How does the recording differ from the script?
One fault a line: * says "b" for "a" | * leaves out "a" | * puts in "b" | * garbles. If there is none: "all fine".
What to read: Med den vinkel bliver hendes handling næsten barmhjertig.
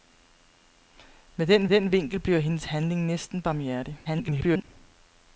* puts in "den"
* garbles